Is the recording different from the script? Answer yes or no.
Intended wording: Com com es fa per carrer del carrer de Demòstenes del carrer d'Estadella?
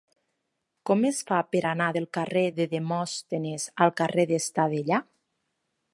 yes